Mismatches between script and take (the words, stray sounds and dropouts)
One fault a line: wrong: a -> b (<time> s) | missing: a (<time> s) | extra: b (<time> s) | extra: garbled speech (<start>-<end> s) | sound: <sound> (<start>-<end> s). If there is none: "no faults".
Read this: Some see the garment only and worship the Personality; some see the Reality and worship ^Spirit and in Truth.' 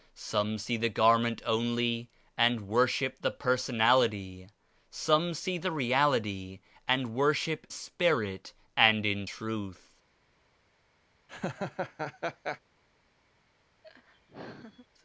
sound: laugh (11.3-12.6 s)
sound: laugh (13.8-14.9 s)